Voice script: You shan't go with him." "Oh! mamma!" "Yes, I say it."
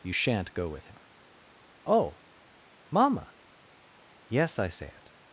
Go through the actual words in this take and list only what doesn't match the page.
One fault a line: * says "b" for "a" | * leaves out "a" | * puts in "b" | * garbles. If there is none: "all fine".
all fine